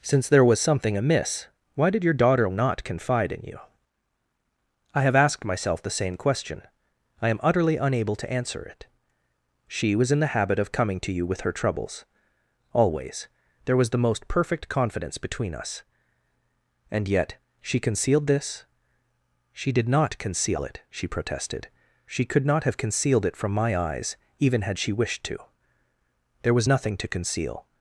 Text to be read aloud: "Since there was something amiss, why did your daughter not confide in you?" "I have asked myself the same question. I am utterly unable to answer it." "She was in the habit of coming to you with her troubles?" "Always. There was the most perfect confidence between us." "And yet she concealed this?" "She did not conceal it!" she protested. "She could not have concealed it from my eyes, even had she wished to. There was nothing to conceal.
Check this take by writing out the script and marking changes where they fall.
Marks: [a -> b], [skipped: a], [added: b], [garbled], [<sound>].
"Since there was something amiss, why did your daughter not confide in you?" "I have asked myself the same question. I am utterly unable to answer it." "She was in the habit of coming to you with her troubles?" "Always. There was the most perfect confidence between us." "And yet she concealed this?" "She did not conceal it!" she protested. "She could not have concealed it from my eyes, even had she wished to. There was nothing to conceal.